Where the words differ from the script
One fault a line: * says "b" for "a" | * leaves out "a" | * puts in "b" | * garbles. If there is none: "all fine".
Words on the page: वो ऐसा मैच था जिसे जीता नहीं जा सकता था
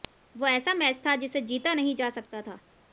all fine